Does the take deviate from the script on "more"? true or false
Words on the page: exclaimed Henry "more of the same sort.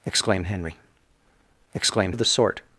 true